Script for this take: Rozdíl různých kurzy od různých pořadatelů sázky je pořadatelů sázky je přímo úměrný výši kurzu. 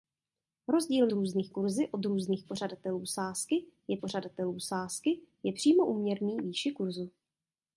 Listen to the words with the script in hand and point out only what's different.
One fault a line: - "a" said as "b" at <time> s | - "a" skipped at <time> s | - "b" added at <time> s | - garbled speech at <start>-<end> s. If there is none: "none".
none